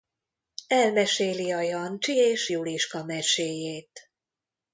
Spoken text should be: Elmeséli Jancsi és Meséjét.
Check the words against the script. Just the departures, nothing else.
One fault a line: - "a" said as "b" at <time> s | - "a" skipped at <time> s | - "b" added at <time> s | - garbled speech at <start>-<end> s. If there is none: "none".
- "a" added at 1.5 s
- "Juliska" added at 2.5 s